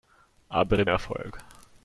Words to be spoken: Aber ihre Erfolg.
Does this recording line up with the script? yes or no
yes